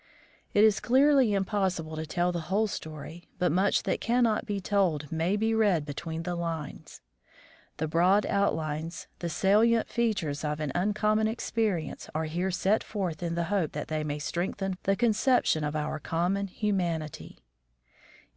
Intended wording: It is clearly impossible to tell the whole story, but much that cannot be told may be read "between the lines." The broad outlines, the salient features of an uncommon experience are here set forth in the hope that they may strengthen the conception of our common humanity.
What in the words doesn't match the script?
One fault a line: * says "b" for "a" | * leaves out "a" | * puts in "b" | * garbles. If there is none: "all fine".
all fine